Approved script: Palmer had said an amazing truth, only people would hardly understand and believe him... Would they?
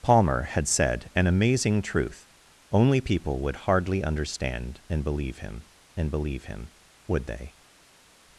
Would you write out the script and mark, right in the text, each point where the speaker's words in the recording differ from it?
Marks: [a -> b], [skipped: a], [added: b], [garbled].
Palmer had said an amazing truth, only people would hardly understand and believe him... [added: and believe him] Would they?